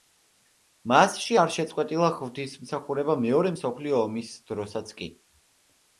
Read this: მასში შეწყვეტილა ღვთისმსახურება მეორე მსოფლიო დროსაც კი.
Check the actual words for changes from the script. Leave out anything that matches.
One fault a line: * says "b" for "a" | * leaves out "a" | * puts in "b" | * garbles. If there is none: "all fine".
* puts in "არ"
* puts in "ომის"